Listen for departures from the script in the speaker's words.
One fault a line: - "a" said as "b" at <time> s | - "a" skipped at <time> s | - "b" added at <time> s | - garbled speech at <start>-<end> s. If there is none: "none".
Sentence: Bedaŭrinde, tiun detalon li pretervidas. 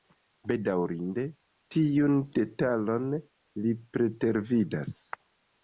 none